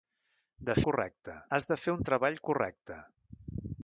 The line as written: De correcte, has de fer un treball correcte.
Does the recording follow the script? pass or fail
pass